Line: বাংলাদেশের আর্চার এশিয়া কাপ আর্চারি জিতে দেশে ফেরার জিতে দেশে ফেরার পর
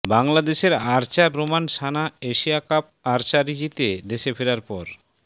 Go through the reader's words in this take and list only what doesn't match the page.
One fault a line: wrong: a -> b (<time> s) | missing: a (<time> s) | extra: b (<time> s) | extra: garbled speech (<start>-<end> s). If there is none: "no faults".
extra: রোমান সানা (1.3 s)
missing: জিতে দেশে ফেরার (4.6 s)